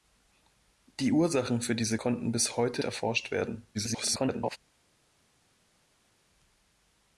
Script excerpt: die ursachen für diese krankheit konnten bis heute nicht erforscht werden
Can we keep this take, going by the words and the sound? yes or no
no